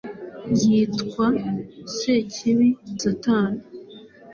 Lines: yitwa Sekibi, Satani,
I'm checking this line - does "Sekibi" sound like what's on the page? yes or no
yes